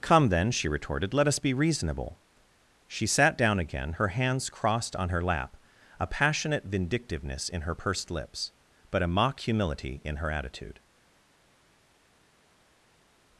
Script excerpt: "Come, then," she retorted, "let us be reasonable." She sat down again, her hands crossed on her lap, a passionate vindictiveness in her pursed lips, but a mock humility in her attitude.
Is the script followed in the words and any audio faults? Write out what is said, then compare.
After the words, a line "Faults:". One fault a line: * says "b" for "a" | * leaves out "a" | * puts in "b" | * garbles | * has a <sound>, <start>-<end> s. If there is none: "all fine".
"Come, then," she retorted, "let us be reasonable." She sat down again, her hands crossed on her lap, a passionate vindictiveness in her pursed lips, but a mock humility in her attitude.
Faults:
all fine